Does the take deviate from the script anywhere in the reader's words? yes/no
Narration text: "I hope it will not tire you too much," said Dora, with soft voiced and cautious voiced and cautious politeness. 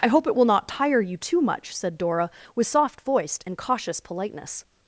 yes